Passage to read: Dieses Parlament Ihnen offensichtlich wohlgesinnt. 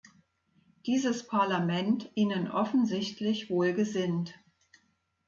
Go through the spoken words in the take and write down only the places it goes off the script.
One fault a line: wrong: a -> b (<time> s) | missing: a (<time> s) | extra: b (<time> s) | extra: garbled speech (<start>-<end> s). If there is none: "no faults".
no faults